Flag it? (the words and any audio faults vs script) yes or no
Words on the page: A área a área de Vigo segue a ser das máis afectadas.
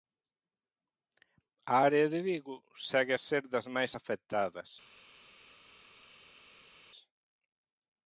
yes